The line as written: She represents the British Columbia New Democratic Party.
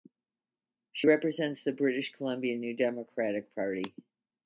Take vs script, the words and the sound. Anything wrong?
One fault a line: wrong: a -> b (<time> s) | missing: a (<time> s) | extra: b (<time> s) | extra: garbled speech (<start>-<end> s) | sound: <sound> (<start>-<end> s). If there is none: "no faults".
no faults